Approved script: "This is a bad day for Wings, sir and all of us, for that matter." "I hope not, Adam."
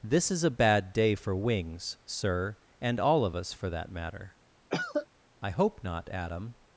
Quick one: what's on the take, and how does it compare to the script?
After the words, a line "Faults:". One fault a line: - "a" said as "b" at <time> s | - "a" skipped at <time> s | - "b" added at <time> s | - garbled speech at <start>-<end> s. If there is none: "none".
"This is a bad day for Wings, sir and all of us, for that matter." "I hope not, Adam."
Faults:
none